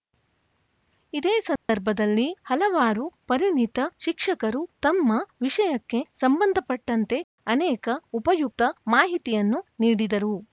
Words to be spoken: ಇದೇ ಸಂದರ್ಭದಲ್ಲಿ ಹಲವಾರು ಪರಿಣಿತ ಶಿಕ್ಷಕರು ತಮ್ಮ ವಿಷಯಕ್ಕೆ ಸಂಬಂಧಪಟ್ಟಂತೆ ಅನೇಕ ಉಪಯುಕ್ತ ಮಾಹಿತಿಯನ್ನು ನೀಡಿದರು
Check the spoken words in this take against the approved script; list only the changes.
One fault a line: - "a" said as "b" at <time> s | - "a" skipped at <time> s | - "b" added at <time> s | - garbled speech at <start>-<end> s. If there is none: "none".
none